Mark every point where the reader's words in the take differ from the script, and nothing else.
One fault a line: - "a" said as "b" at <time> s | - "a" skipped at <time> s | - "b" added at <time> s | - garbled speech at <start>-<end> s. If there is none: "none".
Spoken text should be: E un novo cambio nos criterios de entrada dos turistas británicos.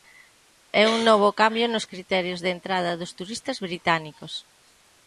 none